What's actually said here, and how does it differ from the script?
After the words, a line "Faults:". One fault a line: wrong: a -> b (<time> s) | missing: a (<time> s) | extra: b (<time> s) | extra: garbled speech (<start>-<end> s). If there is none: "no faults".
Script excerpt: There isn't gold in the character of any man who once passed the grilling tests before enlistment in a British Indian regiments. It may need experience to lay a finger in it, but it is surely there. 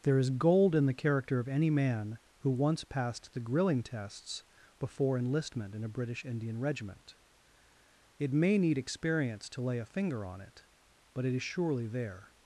There is gold in the character of any man who once passed the grilling tests before enlistment in a British Indian regiment. It may need experience to lay a finger on it, but it is surely there.
Faults:
wrong: isn't -> is (0.2 s)
wrong: regiments -> regiment (6.6 s)
wrong: in -> on (10.2 s)